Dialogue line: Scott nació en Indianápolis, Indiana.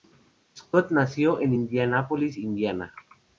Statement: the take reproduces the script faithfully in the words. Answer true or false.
true